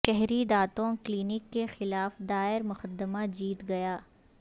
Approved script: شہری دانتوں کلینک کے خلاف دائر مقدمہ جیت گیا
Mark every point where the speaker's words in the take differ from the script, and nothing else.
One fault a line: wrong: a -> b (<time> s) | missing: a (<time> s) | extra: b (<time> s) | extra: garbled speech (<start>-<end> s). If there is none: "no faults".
no faults